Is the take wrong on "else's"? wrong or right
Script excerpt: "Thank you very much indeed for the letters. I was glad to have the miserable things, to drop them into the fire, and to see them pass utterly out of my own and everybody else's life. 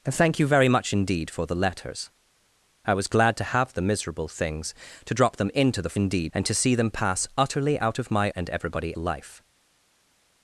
wrong